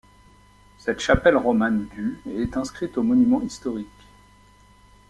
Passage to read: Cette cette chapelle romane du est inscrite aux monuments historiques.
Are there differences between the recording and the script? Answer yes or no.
yes